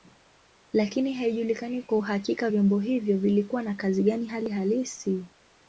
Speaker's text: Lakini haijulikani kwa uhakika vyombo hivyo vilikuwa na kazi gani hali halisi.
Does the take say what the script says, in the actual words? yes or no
yes